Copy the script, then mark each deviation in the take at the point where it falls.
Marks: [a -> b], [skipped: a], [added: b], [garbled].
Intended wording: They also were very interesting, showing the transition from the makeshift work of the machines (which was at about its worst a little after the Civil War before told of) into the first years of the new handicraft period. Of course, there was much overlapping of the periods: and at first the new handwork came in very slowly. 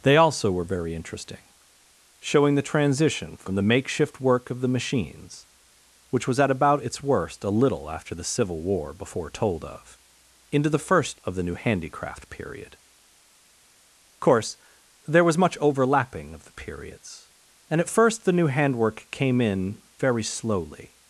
They also were very interesting, showing the transition from the makeshift work of the machines (which was at about its worst a little after the Civil War before told of) into the first [skipped: years] of the new handicraft period. [skipped: Of] course, there was much overlapping of the periods: and at first the new handwork came in very slowly.